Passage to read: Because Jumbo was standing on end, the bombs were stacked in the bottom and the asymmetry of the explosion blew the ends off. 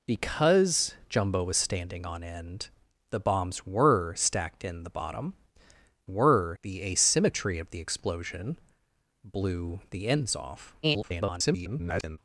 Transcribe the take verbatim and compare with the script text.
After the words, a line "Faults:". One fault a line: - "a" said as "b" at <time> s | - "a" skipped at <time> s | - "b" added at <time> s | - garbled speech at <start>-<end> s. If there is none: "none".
Because Jumbo was standing on end, the bombs were stacked in the bottom were the asymmetry of the explosion blew the ends off. [garbled]
Faults:
- "and" said as "were" at 6.1 s
- garbled speech at 10.8-12.2 s